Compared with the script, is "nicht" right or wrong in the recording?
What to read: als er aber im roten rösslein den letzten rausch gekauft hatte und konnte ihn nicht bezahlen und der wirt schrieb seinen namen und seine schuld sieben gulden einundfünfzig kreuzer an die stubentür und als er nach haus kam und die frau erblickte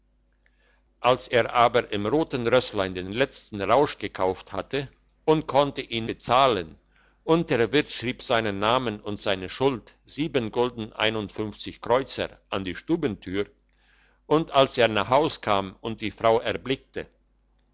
wrong